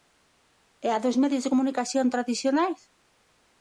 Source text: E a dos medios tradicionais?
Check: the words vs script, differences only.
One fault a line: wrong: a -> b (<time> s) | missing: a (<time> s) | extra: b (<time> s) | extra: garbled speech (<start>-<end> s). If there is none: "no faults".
extra: de comunicación (1.4 s)